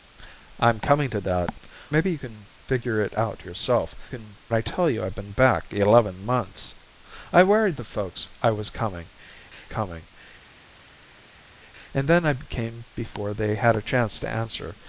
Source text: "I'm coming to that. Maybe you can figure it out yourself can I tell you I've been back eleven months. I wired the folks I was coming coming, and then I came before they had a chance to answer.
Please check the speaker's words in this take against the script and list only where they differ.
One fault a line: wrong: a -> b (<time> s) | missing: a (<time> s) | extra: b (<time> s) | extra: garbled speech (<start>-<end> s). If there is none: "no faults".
no faults